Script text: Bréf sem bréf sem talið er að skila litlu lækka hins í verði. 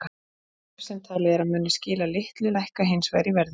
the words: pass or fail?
fail